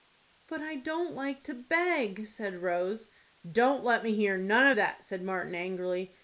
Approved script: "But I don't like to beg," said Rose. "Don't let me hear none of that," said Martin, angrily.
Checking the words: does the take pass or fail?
pass